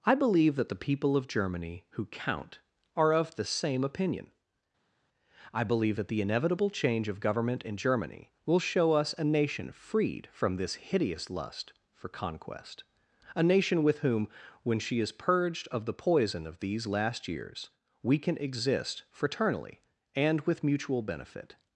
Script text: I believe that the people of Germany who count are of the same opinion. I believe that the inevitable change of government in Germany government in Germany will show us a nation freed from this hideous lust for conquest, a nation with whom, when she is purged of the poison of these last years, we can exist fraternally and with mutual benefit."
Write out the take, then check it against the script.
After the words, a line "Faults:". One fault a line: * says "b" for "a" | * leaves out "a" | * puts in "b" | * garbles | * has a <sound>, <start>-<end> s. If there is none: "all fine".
I believe that the people of Germany who count are of the same opinion. I believe that the inevitable change of government in Germany will show us a nation freed from this hideous lust for conquest, a nation with whom, when she is purged of the poison of these last years, we can exist fraternally and with mutual benefit."
Faults:
* leaves out "government in Germany"